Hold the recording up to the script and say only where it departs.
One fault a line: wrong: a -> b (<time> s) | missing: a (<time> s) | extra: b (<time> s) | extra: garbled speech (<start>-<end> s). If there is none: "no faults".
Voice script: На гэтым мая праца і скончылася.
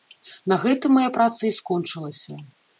no faults